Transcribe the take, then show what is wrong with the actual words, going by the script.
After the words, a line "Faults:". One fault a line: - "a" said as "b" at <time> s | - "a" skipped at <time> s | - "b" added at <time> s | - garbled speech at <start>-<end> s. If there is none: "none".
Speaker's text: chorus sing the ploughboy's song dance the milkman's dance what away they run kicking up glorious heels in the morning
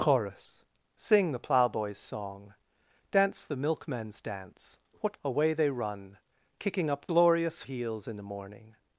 chorus sing the ploughboy's song dance the milkman's dance what away they run kicking up glorious heels in the morning
Faults:
none